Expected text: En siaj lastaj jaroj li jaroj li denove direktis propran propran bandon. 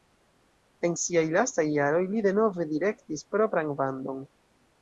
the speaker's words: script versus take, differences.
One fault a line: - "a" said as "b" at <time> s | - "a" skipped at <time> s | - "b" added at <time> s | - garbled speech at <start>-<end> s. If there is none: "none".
- "jaroj li" skipped at 2.2 s
- "propran" skipped at 3.8 s